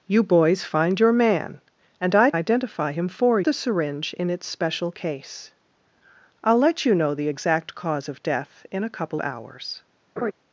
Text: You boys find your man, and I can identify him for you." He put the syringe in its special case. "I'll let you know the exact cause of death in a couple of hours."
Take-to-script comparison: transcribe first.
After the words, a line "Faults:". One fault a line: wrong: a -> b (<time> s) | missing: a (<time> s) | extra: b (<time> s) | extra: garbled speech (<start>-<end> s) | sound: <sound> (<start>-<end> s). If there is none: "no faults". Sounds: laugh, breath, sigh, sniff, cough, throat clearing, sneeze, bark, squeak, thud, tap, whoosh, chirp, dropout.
You boys find your man, and I identify him for the syringe in its special case. "I'll let you know the exact cause of death in a couple hours."
Faults:
missing: can (2.3 s)
missing: you He put (3.4 s)
missing: of (9.2 s)
sound: laugh (10.2-10.3 s)